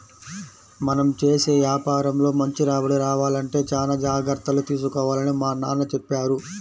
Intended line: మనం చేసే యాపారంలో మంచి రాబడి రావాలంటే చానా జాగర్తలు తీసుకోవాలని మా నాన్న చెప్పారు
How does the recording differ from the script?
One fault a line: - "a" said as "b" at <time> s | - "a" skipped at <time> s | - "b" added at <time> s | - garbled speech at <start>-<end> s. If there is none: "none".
none